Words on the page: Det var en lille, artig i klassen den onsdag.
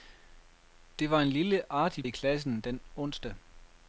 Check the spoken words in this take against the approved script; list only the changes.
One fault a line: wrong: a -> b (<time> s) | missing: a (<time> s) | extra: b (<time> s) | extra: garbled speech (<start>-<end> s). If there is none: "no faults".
no faults